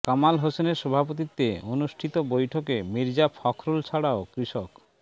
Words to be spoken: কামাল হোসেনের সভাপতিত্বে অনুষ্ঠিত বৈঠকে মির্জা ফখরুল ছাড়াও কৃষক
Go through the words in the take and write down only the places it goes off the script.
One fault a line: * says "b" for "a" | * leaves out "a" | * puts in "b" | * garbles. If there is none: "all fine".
all fine